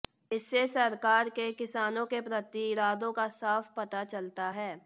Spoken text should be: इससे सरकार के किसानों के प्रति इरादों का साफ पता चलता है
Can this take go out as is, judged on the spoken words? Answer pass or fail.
pass